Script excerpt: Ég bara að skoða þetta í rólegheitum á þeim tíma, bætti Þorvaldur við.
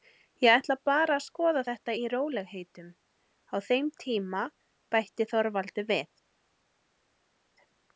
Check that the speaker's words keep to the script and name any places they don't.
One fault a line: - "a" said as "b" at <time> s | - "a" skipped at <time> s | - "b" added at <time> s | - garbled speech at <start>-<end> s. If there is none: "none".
- "ætla" added at 0.5 s